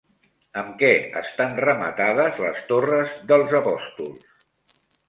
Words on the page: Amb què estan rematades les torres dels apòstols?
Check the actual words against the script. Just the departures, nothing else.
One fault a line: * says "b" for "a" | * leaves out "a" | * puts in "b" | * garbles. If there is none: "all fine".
all fine